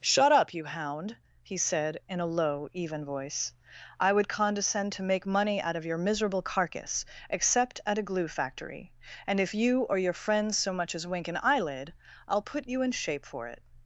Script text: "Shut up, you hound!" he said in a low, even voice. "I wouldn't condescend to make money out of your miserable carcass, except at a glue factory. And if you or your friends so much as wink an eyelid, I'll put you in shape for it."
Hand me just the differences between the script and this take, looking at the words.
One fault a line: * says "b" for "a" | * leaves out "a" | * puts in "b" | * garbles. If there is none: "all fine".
* says "would" for "wouldn't"